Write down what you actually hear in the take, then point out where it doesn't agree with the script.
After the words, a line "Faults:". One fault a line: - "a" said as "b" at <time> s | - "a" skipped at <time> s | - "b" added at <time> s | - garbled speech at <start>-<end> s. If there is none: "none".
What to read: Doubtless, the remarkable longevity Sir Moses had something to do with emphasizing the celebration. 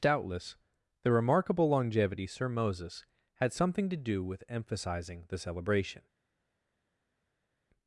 Doubtless, the remarkable longevity Sir Moses had something to do with emphasizing the celebration.
Faults:
none